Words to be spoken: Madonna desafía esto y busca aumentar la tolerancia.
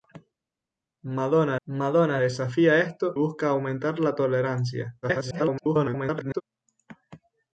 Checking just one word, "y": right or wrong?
wrong